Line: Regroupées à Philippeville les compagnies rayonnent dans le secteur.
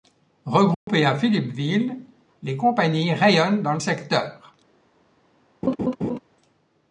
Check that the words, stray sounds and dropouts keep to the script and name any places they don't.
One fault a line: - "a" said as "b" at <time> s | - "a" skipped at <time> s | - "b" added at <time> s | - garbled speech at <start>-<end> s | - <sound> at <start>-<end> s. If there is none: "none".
- dropout at 0.7-0.9 s
- laugh at 5.6-6.2 s